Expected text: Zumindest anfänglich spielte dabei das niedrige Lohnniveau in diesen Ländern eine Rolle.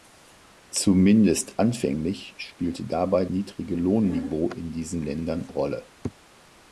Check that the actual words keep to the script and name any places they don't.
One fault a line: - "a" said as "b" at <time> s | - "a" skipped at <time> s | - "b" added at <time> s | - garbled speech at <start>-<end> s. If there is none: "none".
- "das" skipped at 3.2 s
- "eine" skipped at 5.5 s